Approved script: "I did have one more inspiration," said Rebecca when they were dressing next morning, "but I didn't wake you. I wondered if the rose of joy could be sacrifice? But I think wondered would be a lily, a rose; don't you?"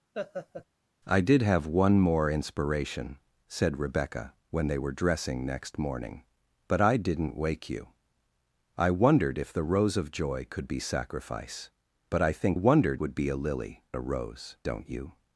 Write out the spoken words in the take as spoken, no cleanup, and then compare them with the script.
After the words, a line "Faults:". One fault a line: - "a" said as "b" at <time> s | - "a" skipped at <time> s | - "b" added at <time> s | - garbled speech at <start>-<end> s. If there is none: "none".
"I did have one more inspiration," said Rebecca when they were dressing next morning, "but I didn't wake you. I wondered if the rose of joy could be sacrifice? But I think wondered would be a lily, a rose; don't you?"
Faults:
none